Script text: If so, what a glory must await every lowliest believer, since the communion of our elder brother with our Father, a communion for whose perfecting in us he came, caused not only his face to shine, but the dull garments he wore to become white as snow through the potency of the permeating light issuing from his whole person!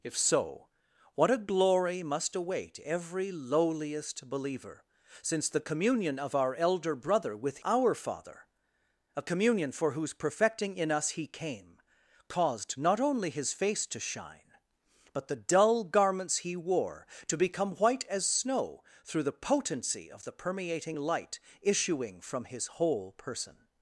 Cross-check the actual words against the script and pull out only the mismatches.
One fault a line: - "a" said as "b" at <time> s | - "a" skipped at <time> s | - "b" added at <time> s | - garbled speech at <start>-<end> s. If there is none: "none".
none